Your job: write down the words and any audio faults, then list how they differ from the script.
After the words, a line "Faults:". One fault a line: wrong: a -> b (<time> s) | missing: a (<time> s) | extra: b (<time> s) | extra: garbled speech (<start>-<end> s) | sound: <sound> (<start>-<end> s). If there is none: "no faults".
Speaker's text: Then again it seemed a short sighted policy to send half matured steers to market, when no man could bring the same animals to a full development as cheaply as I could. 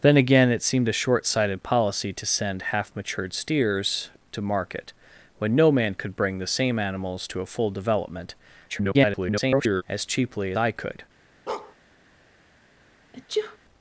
Then again it seemed a short sighted policy to send half matured steers to market, when no man could bring the same animals to a full development [garbled] as cheaply I could.
Faults:
extra: garbled speech (8.7-9.8 s)
missing: as (10.5 s)
sound: bark (11.5-11.8 s)
sound: sneeze (13.1-13.6 s)